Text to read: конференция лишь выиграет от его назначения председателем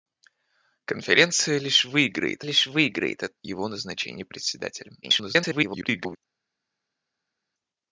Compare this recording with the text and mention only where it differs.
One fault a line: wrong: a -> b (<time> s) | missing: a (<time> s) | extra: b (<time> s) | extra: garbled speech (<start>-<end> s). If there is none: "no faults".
extra: лишь выиграет (2.4 s)
extra: garbled speech (5.0-6.2 s)